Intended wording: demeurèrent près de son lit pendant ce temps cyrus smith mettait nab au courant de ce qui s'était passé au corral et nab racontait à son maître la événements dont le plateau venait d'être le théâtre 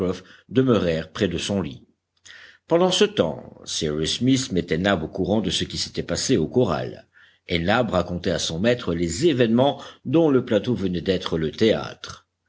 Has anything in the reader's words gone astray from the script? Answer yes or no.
yes